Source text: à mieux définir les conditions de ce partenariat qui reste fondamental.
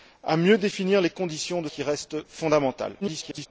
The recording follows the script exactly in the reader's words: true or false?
false